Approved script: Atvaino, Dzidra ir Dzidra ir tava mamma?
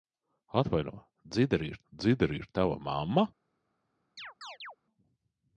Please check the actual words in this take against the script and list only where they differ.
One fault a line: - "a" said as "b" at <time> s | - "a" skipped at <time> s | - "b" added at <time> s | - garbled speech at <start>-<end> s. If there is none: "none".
none